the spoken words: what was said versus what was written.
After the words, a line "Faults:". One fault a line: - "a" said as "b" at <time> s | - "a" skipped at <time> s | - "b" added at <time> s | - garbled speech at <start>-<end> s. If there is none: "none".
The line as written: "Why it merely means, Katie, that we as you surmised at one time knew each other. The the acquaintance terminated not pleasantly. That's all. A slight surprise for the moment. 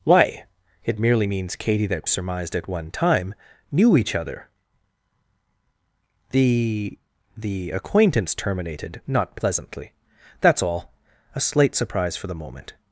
"Why it merely means, Katie, that surmised at one time knew each other. The the acquaintance terminated not pleasantly. That's all. A slight surprise for the moment.
Faults:
- "we as you" skipped at 2.1 s